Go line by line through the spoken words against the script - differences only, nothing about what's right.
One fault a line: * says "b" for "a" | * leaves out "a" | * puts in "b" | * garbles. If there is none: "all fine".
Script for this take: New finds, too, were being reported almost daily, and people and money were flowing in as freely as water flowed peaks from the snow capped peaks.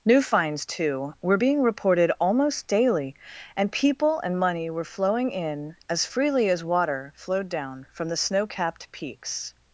* says "down" for "peaks"